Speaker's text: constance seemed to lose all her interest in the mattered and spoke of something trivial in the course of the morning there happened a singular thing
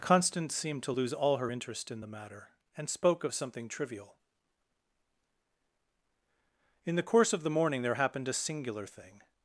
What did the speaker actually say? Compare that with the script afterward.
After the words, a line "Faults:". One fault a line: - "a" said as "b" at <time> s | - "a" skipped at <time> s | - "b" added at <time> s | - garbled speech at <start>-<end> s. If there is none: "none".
constance seemed to lose all her interest in the matter and spoke of something trivial in the course of the morning there happened a singular thing
Faults:
- "mattered" said as "matter" at 2.1 s